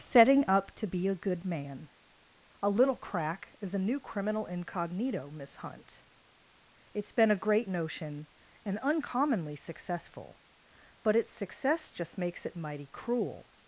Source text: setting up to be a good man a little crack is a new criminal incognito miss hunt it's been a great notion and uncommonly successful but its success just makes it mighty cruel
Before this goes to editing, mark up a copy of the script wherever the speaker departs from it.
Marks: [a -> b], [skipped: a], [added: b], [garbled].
setting up to be a good man a little crack is a new criminal incognito miss hunt it's been a great notion and uncommonly successful but its success just makes it mighty cruel